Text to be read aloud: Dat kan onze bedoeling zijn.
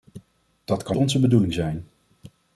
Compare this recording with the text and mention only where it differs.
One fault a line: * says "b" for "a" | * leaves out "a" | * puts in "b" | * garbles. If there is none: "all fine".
all fine